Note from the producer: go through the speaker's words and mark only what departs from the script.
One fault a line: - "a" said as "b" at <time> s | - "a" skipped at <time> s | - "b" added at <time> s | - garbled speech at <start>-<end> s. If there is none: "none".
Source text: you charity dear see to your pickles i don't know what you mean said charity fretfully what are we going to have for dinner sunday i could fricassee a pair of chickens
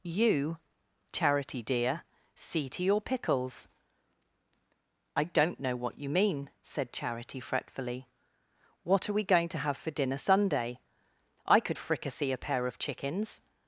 none